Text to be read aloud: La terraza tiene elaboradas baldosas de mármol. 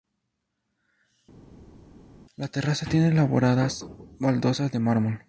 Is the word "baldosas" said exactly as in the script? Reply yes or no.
yes